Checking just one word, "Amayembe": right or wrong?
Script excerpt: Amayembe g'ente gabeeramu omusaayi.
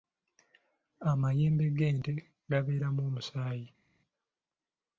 right